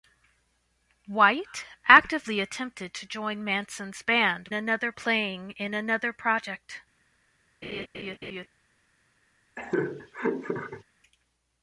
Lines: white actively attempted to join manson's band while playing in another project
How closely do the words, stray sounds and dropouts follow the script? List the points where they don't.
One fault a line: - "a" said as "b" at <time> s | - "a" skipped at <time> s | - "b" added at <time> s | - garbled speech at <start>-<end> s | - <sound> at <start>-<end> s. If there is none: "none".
- "while" said as "another" at 4.5 s
- laugh at 7.6-8.5 s
- laugh at 9.6-10.8 s